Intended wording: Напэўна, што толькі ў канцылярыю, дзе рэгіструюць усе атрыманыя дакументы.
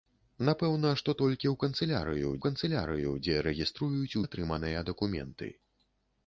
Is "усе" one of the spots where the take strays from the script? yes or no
yes